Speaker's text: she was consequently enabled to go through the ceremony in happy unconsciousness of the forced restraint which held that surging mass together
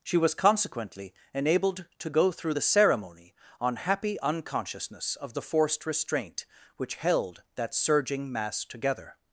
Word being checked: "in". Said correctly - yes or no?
no